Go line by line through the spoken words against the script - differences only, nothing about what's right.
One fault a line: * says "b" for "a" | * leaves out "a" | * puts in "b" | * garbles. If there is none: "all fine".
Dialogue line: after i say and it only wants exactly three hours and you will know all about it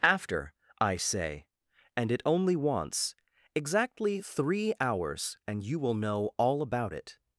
all fine